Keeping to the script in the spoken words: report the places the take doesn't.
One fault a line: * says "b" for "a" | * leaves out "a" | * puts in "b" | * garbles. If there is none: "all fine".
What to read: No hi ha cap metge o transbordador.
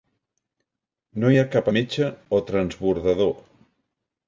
all fine